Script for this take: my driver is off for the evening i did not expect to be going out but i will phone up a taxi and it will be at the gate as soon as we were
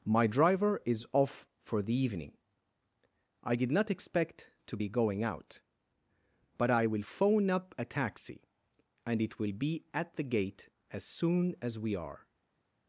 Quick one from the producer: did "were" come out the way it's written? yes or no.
no